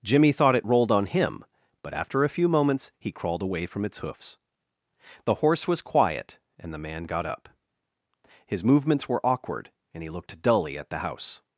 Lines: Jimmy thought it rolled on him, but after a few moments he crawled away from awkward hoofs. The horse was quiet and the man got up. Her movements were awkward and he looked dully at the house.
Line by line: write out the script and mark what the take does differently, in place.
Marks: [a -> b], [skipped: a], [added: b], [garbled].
Jimmy thought it rolled on him, but after a few moments he crawled away from [awkward -> its] hoofs. The horse was quiet and the man got up. [Her -> His] movements were awkward and he looked dully at the house.